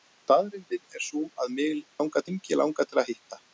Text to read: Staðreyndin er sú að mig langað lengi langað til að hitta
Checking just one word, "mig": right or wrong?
right